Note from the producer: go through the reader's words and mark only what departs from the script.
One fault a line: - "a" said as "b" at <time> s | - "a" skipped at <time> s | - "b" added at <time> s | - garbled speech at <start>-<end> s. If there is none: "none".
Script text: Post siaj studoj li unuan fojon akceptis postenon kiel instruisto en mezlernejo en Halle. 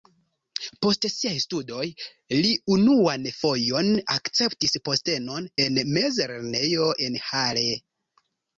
- "kiel instruisto" skipped at 5.5 s